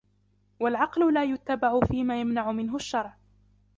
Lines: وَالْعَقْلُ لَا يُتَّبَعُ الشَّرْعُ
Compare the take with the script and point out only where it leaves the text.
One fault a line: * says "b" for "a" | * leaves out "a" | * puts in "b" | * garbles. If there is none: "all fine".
* puts in "فِيمَا يَمْنَعُ مِنْهُ"